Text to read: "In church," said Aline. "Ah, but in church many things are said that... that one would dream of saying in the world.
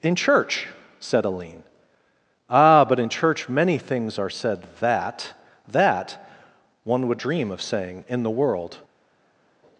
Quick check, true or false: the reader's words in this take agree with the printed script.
true